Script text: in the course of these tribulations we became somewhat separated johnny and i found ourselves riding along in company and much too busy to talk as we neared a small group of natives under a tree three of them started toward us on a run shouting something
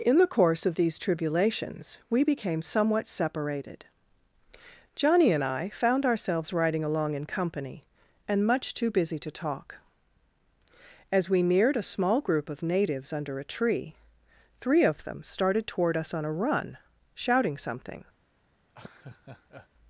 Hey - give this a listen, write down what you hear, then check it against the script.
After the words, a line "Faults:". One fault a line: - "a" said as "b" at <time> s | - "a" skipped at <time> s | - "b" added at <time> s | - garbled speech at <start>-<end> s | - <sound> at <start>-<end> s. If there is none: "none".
in the course of these tribulations we became somewhat separated johnny and i found ourselves riding along in company and much too busy to talk as we neared a small group of natives under a tree three of them started toward us on a run shouting something
Faults:
- laugh at 18.7-19.7 s